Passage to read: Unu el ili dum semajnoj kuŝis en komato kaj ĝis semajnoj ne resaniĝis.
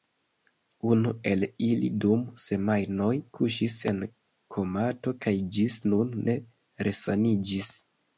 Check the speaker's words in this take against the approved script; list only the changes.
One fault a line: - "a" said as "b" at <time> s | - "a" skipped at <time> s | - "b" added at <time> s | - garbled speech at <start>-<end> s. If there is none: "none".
- "semajnoj" said as "nun" at 5.9 s